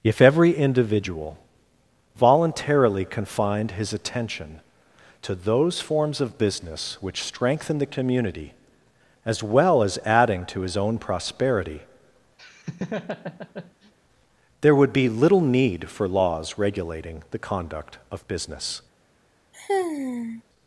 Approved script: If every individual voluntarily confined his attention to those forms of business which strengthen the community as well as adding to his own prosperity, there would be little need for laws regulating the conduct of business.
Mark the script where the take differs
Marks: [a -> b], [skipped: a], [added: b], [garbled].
If every individual voluntarily confined his attention to those forms of business which strengthen the community as well as adding to his own prosperity, there would be little need for laws regulating the conduct of business.